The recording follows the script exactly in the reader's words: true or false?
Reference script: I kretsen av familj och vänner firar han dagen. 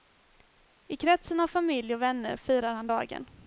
true